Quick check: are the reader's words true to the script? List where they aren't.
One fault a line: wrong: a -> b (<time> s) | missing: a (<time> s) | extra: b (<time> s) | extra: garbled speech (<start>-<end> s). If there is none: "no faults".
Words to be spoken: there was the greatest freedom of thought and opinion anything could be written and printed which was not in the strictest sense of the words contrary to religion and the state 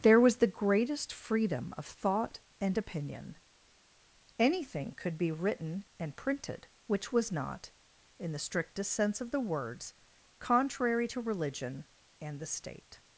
no faults